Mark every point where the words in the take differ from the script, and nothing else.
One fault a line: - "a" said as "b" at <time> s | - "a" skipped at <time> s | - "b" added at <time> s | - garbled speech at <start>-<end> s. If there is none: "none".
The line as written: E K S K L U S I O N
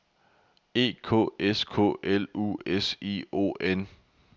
none